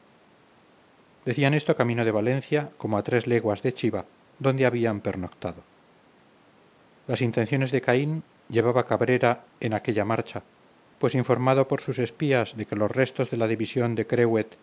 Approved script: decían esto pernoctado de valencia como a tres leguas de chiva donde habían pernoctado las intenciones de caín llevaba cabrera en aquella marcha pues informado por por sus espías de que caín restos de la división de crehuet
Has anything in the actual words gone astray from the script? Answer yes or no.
yes